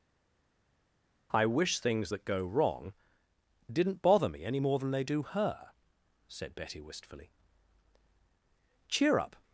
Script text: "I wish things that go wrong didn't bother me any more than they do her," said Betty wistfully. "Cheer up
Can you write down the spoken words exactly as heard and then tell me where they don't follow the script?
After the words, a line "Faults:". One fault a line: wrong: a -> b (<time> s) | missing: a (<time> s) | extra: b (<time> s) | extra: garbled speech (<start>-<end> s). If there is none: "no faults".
"I wish things that go wrong didn't bother me any more than they do her," said Betty wistfully. "Cheer up
Faults:
no faults